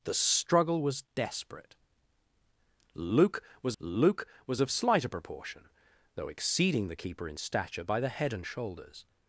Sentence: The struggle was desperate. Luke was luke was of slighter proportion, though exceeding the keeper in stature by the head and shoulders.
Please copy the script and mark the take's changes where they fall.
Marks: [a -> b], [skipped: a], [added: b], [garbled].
The struggle was desperate. Luke was luke was of slighter proportion, though exceeding the keeper in stature by the head and shoulders.